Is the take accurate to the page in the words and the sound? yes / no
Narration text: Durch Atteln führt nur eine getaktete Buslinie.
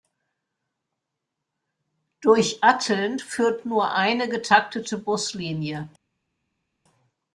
yes